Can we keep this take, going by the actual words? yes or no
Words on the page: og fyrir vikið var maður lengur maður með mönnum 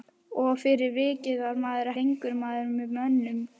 yes